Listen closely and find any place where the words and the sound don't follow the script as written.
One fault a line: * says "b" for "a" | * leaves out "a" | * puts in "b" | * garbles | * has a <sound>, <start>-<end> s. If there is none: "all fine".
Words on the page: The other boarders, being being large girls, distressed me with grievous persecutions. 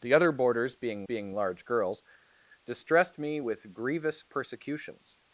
all fine